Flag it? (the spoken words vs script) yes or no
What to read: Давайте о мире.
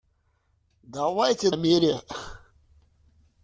no